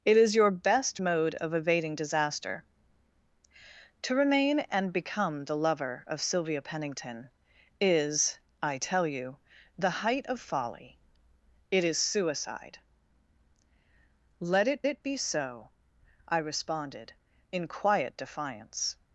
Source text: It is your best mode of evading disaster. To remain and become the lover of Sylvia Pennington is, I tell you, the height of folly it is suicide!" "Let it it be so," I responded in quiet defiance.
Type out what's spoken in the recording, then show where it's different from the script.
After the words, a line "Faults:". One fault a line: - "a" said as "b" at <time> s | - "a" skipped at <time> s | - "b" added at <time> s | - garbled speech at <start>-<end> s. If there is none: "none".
It is your best mode of evading disaster. To remain and become the lover of Sylvia Pennington is, I tell you, the height of folly it is suicide!" "Let it it be so," I responded in quiet defiance.
Faults:
none